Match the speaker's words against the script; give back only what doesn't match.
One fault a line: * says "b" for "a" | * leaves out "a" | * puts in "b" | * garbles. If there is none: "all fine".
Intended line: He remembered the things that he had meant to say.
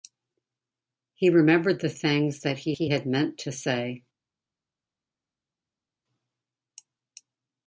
* puts in "he"